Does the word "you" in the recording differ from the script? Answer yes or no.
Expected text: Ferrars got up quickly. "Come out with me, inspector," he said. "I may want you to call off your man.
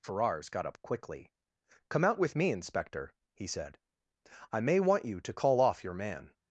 no